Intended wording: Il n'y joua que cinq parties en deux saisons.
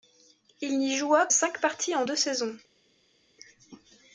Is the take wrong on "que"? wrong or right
wrong